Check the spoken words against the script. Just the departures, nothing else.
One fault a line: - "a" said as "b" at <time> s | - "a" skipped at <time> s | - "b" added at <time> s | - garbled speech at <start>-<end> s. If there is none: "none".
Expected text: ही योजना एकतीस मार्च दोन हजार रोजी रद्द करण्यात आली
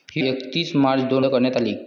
- "योजना" skipped at 0.2 s
- "हजार रोजी रद्द" skipped at 1.2 s